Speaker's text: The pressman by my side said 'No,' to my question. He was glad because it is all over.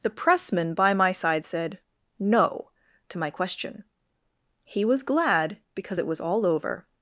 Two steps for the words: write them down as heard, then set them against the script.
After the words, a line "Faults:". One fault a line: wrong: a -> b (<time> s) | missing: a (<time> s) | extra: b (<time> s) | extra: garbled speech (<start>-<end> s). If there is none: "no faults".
The pressman by my side said 'No,' to my question. He was glad because it was all over.
Faults:
wrong: is -> was (6.1 s)